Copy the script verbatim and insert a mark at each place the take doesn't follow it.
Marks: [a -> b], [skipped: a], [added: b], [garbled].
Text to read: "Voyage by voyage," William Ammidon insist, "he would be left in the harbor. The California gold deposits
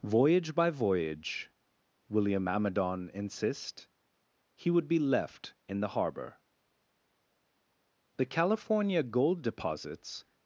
"Voyage by voyage," William Ammidon insist, "he would be left in the harbor. The California gold deposits